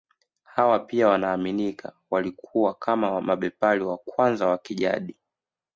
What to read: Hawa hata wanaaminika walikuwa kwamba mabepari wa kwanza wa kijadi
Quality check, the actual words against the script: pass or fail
fail